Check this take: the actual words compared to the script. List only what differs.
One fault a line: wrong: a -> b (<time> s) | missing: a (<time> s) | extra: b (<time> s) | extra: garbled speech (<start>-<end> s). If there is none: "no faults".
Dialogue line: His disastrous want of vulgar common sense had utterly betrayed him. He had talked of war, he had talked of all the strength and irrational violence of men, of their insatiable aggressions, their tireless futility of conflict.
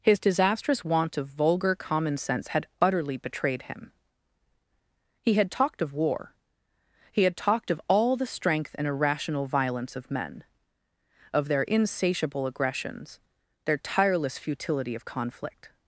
no faults